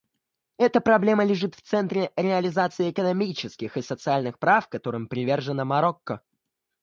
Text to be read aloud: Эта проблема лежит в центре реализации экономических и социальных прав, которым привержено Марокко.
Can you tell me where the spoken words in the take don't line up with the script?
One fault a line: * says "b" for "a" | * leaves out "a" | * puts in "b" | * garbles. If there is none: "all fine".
all fine